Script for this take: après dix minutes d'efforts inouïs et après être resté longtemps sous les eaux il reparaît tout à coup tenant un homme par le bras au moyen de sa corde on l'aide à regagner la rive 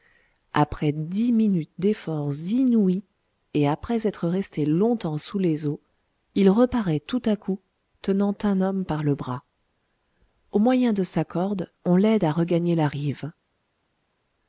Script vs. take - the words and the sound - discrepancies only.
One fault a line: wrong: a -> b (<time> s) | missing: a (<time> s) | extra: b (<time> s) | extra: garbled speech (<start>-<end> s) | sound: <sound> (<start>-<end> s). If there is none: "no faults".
no faults